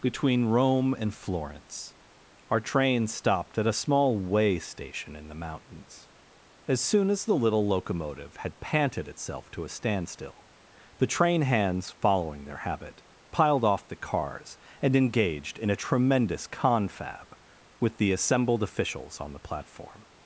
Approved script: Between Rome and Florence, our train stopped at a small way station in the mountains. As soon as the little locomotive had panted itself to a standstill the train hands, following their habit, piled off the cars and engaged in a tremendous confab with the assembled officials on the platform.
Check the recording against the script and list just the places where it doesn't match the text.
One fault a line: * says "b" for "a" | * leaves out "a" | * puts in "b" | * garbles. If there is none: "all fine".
all fine